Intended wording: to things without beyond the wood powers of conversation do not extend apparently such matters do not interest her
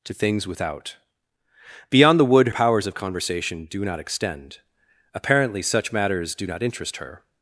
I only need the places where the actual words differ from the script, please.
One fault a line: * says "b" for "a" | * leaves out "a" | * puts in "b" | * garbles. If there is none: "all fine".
all fine